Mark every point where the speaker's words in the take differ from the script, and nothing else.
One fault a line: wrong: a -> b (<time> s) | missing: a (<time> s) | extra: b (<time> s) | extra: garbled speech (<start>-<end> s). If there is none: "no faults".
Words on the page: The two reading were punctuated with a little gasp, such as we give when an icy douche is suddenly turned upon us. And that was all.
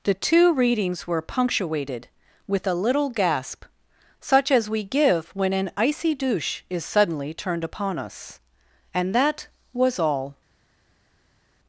wrong: reading -> readings (0.5 s)